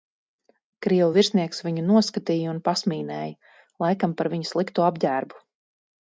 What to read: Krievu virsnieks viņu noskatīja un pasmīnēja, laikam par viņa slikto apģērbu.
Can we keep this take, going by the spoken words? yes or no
yes